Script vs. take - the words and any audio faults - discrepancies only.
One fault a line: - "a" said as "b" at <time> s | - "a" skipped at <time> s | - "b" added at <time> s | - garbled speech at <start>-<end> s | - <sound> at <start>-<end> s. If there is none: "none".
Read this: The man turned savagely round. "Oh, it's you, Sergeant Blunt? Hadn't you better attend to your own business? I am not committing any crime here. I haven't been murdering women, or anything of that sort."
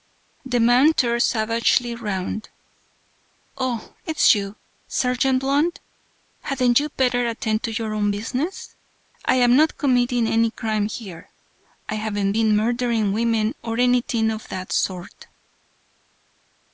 none